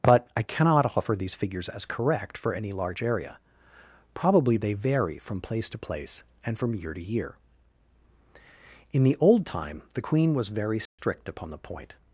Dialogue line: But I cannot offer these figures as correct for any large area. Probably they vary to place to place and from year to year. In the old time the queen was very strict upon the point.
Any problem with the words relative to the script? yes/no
yes